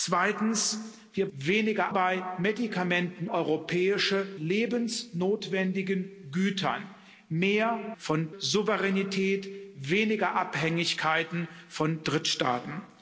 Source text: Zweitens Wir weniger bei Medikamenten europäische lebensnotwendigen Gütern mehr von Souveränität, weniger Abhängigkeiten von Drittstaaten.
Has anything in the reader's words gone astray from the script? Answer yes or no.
no